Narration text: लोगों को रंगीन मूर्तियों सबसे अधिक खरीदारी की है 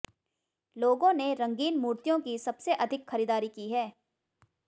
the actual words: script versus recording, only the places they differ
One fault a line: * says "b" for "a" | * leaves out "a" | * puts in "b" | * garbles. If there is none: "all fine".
* says "ने" for "को"
* puts in "की"